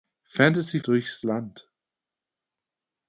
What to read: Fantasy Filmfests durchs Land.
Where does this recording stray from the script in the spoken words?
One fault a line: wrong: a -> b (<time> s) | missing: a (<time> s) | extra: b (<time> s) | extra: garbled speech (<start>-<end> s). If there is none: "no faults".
missing: Filmfests (0.8 s)